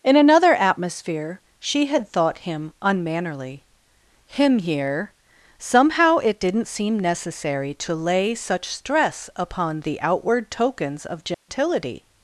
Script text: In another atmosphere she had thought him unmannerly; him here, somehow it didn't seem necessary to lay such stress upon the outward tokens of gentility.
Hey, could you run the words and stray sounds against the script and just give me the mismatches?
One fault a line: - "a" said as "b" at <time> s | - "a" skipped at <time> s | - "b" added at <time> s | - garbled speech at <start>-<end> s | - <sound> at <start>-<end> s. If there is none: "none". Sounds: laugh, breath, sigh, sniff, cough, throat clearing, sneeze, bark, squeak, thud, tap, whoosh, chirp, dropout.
- dropout at 11.3-11.5 s